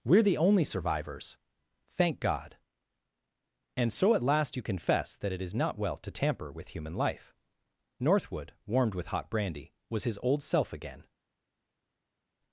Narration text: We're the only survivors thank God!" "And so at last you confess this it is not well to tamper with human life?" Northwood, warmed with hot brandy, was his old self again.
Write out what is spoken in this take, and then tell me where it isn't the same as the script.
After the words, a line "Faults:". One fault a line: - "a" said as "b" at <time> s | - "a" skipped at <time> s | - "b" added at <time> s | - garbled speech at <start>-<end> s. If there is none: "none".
We're the only survivors thank God!" "And so at last you confess that it is not well to tamper with human life?" Northwood, warmed with hot brandy, was his old self again.
Faults:
- "this" said as "that" at 5.2 s